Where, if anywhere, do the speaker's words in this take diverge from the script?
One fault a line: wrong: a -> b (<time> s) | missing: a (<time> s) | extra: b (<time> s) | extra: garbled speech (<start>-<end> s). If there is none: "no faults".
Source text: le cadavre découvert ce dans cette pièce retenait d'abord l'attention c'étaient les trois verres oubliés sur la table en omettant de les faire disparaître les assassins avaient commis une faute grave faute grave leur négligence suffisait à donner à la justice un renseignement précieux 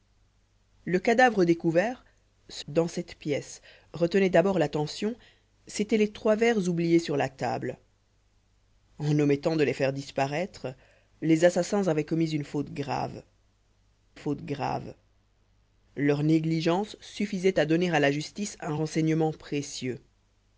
no faults